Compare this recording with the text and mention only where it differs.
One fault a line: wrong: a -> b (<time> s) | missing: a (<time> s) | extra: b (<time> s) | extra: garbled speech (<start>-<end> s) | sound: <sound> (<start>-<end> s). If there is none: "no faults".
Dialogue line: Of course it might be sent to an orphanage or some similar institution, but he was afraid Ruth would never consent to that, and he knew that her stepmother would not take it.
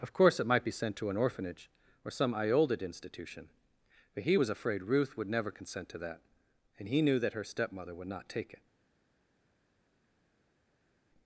wrong: similar -> iolded (2.3 s)